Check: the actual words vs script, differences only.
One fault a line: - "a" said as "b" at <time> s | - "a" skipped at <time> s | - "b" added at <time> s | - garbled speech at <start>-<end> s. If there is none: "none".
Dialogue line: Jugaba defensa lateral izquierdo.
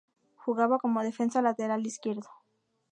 - "como" added at 0.8 s